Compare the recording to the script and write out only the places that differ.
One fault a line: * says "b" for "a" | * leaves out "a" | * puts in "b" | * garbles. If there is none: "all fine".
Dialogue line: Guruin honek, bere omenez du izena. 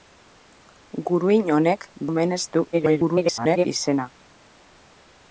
* leaves out "bere"
* garbles